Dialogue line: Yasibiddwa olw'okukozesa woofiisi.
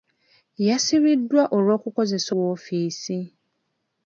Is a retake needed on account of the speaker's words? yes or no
no